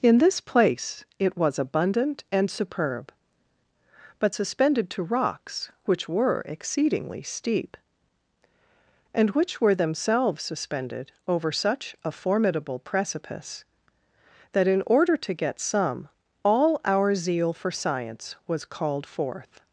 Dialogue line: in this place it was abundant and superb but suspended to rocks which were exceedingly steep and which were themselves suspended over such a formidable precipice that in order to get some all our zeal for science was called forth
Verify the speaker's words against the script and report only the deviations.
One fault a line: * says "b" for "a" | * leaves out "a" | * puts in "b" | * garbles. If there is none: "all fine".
all fine